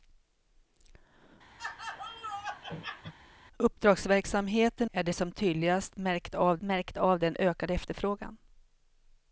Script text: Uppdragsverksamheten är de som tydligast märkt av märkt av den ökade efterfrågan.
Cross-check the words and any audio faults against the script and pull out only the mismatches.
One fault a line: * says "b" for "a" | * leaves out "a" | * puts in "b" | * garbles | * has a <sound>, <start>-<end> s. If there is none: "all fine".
* has a laugh, 1.6-3.1 s